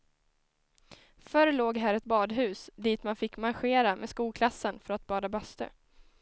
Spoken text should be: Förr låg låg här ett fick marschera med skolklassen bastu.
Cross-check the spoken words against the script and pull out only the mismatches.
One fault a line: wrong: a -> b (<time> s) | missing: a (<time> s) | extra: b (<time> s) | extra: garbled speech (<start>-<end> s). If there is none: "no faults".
missing: låg (1.8 s)
extra: badhus dit man (2.0 s)
extra: för att bada (4.8 s)